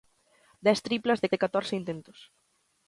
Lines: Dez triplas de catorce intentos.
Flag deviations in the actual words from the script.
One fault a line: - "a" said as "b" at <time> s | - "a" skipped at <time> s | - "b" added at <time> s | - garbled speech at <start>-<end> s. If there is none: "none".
- "de" added at 1.3 s